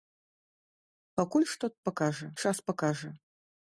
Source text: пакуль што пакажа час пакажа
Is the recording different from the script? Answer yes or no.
no